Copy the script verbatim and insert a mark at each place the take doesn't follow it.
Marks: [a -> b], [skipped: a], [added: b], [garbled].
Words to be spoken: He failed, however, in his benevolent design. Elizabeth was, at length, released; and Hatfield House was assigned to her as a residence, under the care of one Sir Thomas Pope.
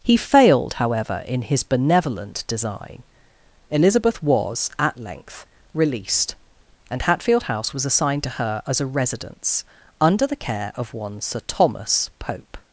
He failed, however, in his benevolent design. Elizabeth was, at length, released; and Hatfield House was assigned to her as a residence, under the care of one Sir Thomas Pope.